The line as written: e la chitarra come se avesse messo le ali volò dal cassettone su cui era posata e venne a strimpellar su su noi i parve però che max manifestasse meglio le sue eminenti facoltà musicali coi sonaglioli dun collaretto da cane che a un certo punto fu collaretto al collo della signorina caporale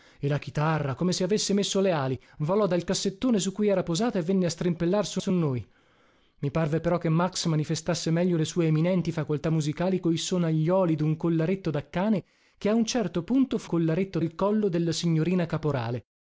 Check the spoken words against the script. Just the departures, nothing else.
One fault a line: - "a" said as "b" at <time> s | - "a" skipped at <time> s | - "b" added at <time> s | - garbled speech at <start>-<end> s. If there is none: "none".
none